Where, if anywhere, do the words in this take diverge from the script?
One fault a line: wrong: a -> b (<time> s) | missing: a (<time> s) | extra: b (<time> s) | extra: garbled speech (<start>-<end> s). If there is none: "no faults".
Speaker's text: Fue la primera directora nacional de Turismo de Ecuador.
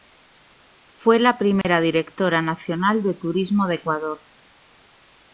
no faults